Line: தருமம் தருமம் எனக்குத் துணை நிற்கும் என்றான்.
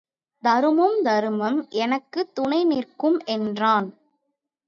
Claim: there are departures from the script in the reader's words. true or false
false